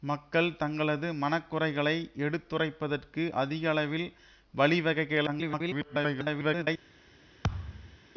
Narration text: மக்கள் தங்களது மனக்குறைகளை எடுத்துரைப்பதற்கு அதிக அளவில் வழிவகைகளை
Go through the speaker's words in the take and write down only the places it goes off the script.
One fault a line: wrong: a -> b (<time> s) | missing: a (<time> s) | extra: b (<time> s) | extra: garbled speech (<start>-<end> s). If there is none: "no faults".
extra: garbled speech (5.3-6.7 s)